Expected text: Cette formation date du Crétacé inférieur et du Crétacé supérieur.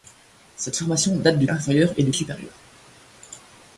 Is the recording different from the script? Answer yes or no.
yes